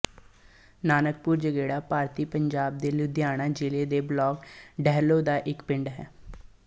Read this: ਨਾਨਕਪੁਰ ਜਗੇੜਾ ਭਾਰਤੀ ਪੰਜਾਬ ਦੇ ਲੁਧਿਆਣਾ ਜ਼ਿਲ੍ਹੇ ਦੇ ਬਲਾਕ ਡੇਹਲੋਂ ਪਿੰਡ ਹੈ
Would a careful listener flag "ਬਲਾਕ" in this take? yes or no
no